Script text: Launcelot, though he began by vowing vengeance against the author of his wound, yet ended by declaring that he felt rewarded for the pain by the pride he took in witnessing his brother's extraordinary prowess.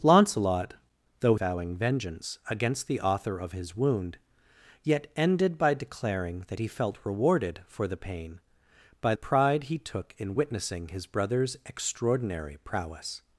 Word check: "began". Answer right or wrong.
wrong